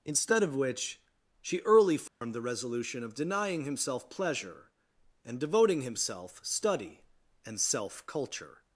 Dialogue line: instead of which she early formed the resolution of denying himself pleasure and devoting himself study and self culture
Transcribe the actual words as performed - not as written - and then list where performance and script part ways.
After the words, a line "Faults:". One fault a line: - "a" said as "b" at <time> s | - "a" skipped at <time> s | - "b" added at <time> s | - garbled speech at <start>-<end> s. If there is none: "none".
instead of which she early formed the resolution of denying himself pleasure and devoting himself study and self culture
Faults:
none